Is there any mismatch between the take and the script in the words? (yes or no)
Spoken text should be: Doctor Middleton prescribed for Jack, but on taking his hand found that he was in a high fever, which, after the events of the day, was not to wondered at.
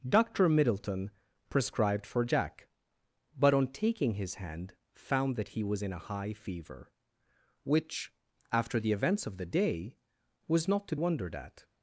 no